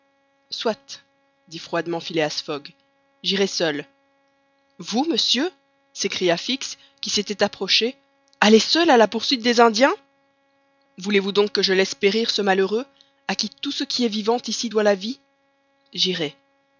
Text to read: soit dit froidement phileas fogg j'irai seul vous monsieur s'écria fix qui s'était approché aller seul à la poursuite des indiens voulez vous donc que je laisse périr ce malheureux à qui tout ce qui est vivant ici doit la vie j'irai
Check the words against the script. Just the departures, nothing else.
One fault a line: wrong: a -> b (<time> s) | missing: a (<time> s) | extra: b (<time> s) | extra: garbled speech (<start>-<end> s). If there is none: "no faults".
no faults